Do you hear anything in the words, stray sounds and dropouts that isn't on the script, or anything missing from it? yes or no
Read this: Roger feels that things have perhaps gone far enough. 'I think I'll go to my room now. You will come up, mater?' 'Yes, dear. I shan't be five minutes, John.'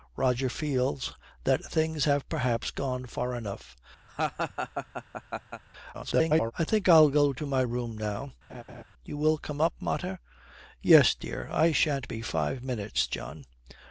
yes